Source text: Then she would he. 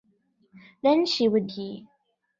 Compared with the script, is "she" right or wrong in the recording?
right